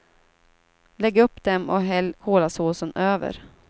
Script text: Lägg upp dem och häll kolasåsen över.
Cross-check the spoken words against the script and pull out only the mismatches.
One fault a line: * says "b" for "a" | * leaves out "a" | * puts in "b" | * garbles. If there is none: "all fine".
all fine